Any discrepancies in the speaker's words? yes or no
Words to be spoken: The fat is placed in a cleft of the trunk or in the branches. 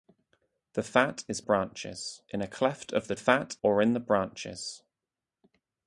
yes